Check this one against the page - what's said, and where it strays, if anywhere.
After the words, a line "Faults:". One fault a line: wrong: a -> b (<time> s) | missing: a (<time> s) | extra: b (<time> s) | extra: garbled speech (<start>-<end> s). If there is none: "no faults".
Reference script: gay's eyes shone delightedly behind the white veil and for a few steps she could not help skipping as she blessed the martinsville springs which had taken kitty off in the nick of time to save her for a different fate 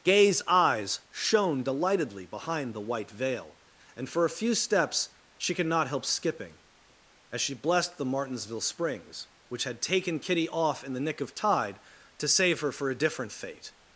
gay's eyes shone delightedly behind the white veil and for a few steps she could not help skipping as she blessed the martinsville springs which had taken kitty off in the nick of tide to save her for a different fate
Faults:
wrong: time -> tide (11.3 s)